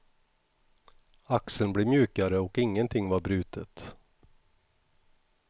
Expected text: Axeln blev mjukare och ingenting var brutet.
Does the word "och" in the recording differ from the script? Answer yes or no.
no